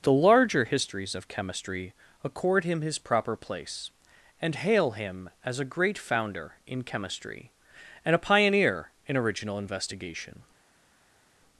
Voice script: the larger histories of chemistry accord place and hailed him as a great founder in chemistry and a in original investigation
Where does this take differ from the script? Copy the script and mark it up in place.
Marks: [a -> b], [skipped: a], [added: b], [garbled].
the larger histories of chemistry accord [added: him his proper] place and [hailed -> hail] him as a great founder in chemistry and a [added: pioneer] in original investigation